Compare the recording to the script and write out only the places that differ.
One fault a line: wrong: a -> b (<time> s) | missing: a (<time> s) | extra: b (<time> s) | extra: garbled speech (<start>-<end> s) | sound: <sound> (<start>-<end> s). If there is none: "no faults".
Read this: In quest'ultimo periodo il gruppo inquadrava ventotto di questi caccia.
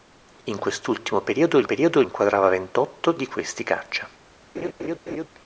wrong: gruppo -> periodo (1.6 s)
sound: laugh (4.5-5.3 s)